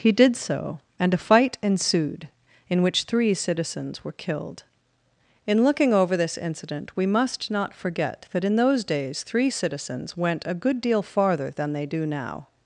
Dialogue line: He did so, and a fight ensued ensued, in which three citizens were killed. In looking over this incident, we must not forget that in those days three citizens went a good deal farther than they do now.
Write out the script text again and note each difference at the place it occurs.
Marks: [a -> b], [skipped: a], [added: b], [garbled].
He did so, and a fight ensued [skipped: ensued,] in which three citizens were killed. In looking over this incident, we must not forget that in those days three citizens went a good deal farther than they do now.